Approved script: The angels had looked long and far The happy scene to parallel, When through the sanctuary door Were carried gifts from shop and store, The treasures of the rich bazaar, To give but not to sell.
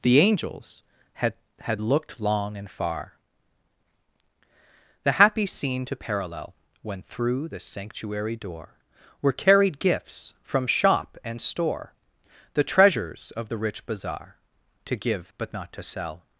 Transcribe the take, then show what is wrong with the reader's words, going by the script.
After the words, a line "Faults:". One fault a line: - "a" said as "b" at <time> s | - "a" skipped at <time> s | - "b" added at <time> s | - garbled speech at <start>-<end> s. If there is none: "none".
The angels had had looked long and far The happy scene to parallel, When through the sanctuary door Were carried gifts from shop and store, The treasures of the rich bazaar, To give but not to sell.
Faults:
- "had" added at 1.6 s